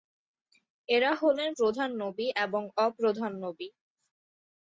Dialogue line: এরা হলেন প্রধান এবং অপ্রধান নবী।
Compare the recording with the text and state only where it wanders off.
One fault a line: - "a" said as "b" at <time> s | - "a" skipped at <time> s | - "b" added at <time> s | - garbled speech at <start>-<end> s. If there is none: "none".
- "নবী" added at 2.0 s